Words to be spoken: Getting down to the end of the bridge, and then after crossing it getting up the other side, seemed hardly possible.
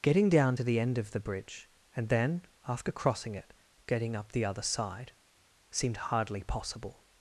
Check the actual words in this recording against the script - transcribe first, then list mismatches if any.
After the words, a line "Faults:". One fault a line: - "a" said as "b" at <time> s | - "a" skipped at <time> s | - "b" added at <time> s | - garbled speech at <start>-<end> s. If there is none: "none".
Getting down to the end of the bridge, and then after crossing it getting up the other side, seemed hardly possible.
Faults:
none